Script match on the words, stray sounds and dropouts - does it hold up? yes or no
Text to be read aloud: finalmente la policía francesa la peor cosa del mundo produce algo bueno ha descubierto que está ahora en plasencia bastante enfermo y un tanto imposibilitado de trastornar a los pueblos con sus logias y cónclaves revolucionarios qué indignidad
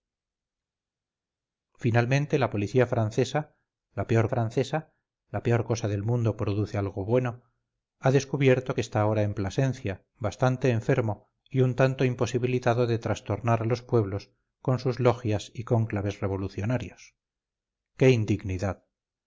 no